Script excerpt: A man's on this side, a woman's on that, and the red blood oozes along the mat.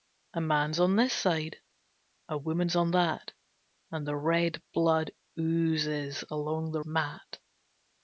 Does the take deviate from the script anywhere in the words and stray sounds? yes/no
no